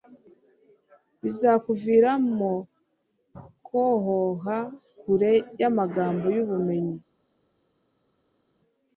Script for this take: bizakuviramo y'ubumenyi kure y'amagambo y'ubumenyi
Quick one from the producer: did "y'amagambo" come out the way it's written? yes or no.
yes